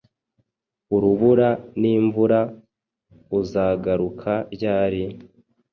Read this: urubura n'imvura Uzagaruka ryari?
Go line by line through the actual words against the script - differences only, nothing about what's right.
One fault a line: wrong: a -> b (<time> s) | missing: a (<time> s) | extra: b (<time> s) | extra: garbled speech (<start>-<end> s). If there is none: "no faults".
no faults